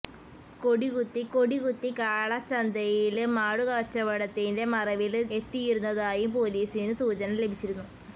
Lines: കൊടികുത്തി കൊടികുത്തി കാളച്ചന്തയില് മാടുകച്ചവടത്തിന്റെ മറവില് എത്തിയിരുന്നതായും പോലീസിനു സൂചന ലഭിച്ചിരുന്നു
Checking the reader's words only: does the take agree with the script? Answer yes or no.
yes